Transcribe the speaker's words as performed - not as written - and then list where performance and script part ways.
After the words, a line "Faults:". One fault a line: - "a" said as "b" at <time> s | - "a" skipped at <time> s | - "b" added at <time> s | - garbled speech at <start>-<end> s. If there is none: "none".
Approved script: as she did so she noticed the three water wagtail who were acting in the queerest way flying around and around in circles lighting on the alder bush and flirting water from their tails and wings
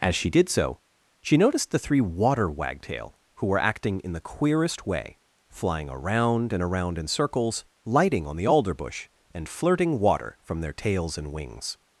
as she did so she noticed the three water wagtail who were acting in the queerest way flying around and around in circles lighting on the alder bush and flirting water from their tails and wings
Faults:
none